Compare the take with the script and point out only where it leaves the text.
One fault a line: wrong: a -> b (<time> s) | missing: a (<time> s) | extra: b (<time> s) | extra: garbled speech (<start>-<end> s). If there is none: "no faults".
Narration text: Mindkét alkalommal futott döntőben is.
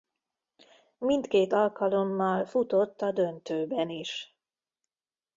extra: a (3.0 s)